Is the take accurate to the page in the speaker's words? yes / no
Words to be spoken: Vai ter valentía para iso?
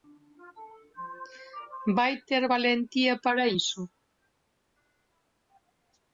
yes